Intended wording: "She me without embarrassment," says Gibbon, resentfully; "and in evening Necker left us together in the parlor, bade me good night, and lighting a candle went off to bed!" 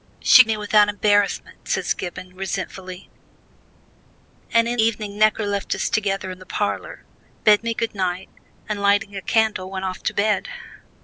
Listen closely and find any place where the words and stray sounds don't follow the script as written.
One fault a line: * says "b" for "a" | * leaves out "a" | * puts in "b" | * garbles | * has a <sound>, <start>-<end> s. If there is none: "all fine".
all fine